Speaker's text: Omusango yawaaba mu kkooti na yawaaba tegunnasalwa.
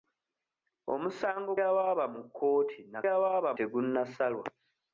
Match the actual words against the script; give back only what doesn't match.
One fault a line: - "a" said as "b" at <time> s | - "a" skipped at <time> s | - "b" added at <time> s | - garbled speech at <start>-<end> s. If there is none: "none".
none